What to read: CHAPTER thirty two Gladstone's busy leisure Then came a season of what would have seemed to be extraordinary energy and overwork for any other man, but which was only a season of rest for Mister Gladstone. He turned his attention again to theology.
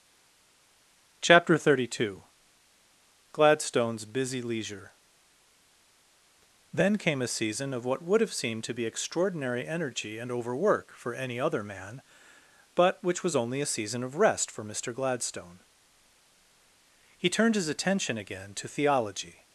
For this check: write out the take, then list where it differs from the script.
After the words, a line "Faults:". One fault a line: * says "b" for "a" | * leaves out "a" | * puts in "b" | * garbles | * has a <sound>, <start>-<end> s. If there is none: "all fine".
CHAPTER thirty two Gladstone's busy leisure Then came a season of what would have seemed to be extraordinary energy and overwork for any other man, but which was only a season of rest for Mister Gladstone. He turned his attention again to theology.
Faults:
all fine